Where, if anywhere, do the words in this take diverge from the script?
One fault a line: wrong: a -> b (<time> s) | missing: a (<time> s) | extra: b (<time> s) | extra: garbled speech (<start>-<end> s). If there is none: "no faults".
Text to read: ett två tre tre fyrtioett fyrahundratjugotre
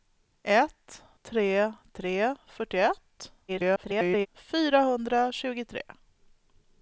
missing: två (1.0 s)
extra: garbled speech (3.5-4.3 s)